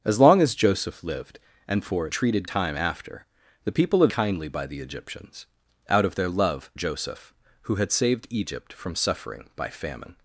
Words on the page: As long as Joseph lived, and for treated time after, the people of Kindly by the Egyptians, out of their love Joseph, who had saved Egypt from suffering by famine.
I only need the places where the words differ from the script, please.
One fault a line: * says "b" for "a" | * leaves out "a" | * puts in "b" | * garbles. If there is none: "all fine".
all fine